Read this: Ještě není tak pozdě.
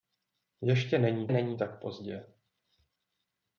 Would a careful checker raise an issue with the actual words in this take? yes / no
yes